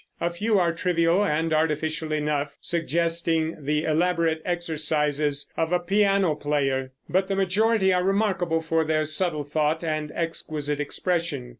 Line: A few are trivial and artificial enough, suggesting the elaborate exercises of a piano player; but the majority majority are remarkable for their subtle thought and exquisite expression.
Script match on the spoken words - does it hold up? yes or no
no